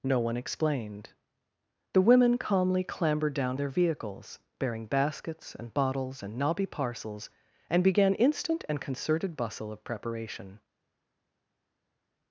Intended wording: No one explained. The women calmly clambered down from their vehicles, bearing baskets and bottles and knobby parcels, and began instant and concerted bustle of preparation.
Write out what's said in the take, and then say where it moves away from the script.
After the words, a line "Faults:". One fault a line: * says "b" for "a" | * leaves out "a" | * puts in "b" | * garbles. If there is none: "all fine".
No one explained. The women calmly clambered down their vehicles, bearing baskets and bottles and knobby parcels, and began instant and concerted bustle of preparation.
Faults:
* leaves out "from"